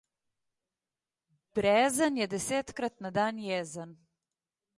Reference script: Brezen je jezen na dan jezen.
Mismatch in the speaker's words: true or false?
true